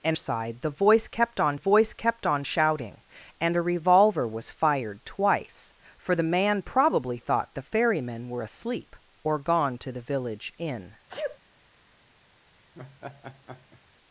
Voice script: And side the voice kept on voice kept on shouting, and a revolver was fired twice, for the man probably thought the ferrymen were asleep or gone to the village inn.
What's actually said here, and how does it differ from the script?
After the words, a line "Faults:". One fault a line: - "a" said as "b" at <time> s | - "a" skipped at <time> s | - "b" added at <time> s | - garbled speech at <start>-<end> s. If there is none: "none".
And side the voice kept on voice kept on shouting, and a revolver was fired twice, for the man probably thought the ferrymen were asleep or gone to the village inn.
Faults:
none